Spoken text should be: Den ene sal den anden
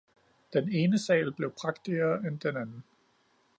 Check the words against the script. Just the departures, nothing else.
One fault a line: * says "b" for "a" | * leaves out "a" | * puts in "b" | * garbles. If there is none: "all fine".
* puts in "blev prægtigere end"